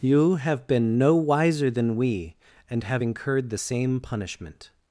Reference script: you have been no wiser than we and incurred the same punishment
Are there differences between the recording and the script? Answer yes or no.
yes